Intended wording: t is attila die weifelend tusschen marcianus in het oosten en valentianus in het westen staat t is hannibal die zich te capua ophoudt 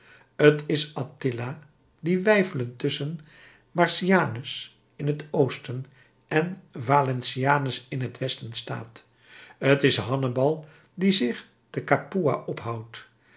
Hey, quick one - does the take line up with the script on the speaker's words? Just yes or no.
yes